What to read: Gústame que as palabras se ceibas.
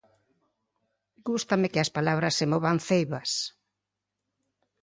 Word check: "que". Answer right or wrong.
right